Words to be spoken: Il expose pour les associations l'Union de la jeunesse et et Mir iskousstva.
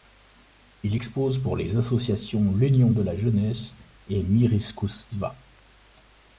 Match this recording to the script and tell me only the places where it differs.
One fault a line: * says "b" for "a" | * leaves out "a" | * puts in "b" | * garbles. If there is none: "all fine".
* leaves out "et"